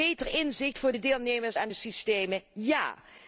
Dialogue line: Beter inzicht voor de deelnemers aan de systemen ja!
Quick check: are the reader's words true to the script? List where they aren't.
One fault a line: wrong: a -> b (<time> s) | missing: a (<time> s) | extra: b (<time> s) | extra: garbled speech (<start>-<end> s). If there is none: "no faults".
no faults